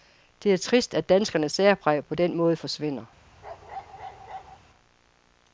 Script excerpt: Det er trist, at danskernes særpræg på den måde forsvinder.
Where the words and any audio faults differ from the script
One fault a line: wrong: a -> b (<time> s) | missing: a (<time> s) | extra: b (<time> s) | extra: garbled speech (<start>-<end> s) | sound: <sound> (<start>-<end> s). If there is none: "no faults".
sound: bark (3.4-4.6 s)